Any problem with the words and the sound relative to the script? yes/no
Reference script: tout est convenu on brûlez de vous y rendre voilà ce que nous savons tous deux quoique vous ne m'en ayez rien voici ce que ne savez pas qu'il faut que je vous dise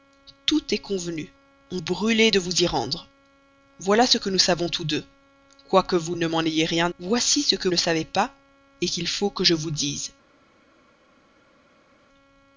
no